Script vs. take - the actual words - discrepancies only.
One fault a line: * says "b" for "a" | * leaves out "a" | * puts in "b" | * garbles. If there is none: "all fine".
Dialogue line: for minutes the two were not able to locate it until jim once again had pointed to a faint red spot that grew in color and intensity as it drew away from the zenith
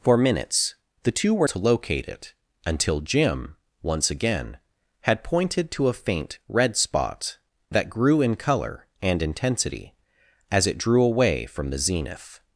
* leaves out "not able"